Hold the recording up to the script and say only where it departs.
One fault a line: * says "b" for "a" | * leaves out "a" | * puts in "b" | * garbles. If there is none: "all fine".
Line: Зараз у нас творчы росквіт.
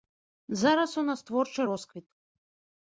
all fine